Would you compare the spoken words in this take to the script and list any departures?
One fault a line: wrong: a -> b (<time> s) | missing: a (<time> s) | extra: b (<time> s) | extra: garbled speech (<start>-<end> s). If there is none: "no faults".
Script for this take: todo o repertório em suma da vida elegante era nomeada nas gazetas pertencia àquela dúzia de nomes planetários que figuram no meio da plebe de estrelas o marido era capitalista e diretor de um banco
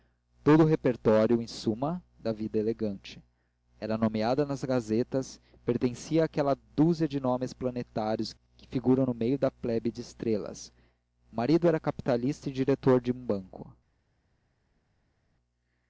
no faults